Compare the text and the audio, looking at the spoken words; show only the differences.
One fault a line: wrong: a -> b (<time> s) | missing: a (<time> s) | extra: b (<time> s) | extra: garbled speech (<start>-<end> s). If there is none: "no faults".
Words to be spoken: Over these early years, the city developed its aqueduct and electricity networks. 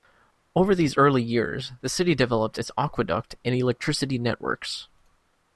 no faults